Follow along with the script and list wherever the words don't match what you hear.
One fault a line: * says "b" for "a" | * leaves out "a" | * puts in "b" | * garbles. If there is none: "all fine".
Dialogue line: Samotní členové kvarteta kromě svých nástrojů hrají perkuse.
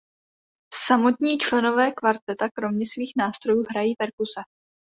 all fine